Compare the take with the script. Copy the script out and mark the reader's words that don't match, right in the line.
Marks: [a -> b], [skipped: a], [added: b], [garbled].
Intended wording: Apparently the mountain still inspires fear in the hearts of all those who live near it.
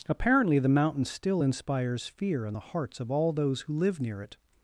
Apparently the mountain still inspires fear in the hearts of all those who live near it.